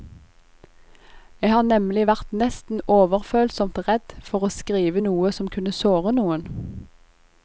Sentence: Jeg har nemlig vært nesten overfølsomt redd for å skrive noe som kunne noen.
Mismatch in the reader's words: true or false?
true